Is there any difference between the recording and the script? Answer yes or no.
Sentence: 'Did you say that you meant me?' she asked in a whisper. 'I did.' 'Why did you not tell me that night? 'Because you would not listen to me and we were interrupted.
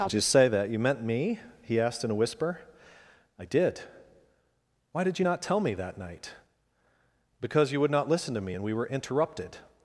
yes